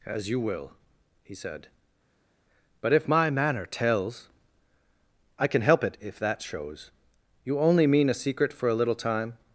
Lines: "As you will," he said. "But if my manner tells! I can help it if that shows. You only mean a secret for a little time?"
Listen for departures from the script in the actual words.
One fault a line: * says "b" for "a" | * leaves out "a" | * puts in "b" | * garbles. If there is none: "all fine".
all fine